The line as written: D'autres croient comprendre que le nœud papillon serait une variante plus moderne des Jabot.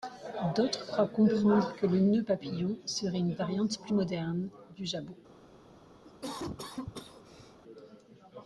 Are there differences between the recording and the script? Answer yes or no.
yes